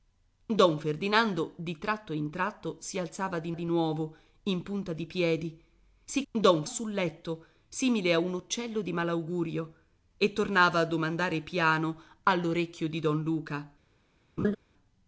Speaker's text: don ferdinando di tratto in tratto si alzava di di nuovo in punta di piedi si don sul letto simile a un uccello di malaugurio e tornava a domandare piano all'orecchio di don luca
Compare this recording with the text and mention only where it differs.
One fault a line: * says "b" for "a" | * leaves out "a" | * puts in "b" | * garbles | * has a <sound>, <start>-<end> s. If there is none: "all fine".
* has a laugh, 14.4-14.6 s